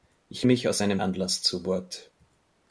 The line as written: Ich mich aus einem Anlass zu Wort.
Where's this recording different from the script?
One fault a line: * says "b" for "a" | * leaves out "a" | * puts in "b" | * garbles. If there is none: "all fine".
all fine